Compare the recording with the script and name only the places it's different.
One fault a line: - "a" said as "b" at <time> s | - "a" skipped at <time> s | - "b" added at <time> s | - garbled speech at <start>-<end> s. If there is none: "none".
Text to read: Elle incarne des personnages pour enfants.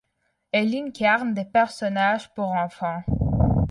none